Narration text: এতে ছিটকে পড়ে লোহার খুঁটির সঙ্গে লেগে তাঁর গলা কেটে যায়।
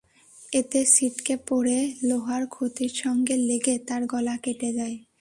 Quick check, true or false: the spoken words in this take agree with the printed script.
true